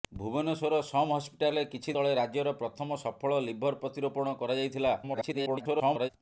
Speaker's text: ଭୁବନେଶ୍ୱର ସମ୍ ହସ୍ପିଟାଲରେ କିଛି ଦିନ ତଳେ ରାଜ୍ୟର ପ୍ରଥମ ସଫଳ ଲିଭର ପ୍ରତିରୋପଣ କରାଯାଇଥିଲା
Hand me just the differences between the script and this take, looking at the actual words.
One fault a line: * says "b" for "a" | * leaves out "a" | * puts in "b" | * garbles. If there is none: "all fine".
* leaves out "ଦିନ"
* garbles